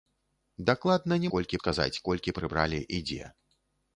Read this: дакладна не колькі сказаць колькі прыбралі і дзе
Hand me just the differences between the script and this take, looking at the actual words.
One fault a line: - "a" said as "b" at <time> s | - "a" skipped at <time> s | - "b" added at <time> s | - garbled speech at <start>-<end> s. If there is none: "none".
none